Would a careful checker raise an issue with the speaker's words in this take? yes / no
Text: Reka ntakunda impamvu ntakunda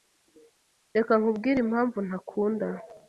yes